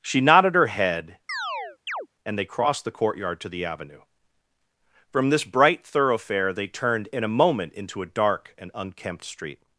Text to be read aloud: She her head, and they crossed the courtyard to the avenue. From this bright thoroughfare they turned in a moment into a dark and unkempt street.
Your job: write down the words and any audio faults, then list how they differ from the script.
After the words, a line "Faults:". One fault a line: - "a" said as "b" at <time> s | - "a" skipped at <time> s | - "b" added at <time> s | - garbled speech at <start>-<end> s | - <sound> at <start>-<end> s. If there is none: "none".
She nodded her head, and they crossed the courtyard to the avenue. From this bright thoroughfare they turned in a moment into a dark and unkempt street.
Faults:
- "nodded" added at 0.2 s
- chirp at 1.3-2.1 s